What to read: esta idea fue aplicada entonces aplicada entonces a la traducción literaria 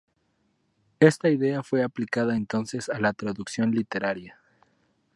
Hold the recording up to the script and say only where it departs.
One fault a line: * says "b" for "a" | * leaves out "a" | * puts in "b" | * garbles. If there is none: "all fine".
* leaves out "aplicada entonces"